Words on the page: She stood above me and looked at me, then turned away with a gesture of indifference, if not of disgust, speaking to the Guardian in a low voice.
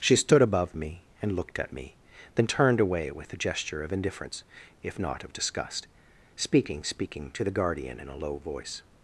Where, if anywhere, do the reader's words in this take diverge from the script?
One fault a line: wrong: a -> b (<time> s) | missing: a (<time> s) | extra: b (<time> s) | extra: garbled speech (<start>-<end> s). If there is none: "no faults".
extra: speaking (6.8 s)